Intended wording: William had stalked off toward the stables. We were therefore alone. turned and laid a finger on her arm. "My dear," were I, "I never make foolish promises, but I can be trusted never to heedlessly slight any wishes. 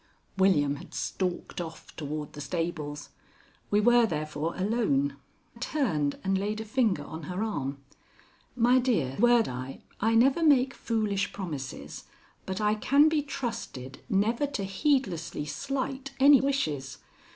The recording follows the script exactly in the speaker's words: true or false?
true